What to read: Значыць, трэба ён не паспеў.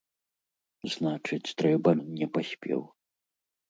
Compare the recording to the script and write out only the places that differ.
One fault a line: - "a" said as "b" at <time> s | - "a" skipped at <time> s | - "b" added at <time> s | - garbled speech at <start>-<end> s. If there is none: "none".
none